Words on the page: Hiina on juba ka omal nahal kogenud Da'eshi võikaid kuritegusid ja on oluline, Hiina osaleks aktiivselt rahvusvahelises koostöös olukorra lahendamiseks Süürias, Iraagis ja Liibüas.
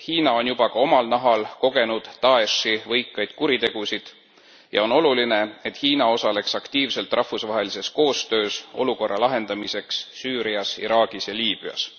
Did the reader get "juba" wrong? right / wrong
right